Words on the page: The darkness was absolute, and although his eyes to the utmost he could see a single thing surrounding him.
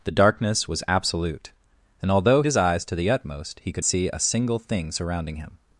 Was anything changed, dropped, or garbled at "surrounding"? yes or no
no